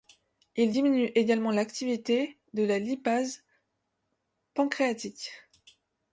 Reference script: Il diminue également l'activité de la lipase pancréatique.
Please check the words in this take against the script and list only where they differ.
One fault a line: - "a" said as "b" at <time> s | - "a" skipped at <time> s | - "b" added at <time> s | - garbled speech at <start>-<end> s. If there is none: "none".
none